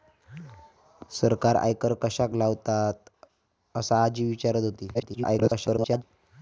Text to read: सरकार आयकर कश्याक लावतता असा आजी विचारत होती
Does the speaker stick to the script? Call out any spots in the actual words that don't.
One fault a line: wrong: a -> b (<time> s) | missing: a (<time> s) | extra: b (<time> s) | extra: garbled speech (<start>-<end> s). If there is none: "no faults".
extra: garbled speech (4.9-6.0 s)